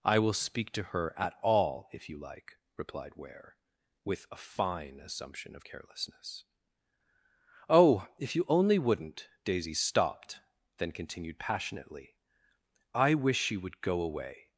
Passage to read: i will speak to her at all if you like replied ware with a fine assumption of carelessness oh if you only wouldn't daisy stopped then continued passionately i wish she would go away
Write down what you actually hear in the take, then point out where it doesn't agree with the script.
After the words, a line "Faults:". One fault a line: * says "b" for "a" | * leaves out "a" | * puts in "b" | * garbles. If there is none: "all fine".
i will speak to her at all if you like replied ware with a fine assumption of carelessness oh if you only wouldn't daisy stopped then continued passionately i wish she would go away
Faults:
all fine